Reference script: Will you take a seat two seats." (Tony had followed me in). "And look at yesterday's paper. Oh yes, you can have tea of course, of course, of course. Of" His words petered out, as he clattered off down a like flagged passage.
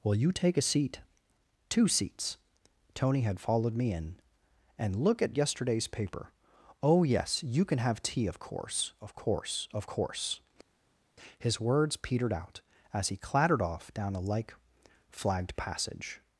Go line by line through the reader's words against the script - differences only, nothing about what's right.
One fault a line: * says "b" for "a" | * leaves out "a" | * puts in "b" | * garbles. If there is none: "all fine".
* leaves out "Of"